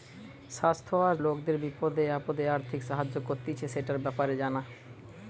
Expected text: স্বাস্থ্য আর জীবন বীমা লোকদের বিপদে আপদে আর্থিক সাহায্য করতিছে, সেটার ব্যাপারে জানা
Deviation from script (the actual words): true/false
true